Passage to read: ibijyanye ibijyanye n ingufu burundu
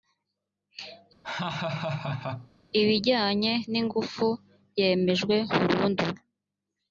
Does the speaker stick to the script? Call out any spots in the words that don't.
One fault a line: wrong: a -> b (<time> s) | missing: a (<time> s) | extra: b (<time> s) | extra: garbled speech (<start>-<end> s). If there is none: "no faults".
missing: ibijyanye (3.5 s)
extra: yemejwe (4.8 s)